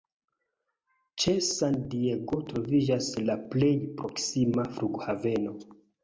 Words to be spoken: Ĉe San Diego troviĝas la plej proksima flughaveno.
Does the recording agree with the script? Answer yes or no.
yes